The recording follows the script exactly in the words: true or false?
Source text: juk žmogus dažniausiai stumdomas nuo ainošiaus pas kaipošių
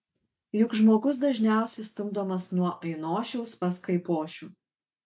true